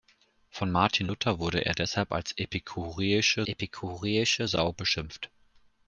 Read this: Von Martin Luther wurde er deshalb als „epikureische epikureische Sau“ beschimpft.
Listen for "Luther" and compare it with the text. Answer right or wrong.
right